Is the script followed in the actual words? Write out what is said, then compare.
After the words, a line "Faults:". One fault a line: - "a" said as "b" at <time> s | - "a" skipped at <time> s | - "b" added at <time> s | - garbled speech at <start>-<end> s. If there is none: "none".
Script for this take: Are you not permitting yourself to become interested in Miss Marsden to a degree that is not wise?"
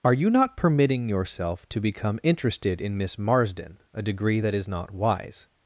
Are you not permitting yourself to become interested in Miss Marsden a degree that is not wise?"
Faults:
- "to" skipped at 3.8 s